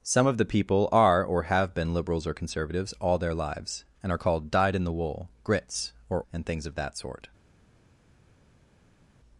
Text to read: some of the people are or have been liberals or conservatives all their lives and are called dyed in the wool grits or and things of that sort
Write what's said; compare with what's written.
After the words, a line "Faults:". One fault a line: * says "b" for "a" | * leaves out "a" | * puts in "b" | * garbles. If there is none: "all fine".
some of the people are or have been liberals or conservatives all their lives and are called dyed in the wool grits or and things of that sort
Faults:
all fine